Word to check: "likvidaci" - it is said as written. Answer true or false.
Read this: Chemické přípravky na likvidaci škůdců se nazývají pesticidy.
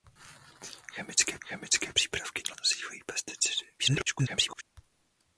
false